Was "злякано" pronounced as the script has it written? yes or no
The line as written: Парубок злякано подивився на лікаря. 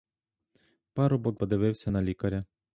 no